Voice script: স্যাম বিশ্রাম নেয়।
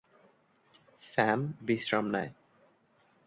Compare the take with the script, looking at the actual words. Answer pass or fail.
pass